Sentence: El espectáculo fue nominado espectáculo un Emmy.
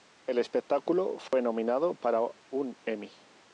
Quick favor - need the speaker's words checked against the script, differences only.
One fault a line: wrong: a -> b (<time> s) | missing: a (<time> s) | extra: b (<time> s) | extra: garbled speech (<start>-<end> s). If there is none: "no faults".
wrong: espectáculo -> para (1.9 s)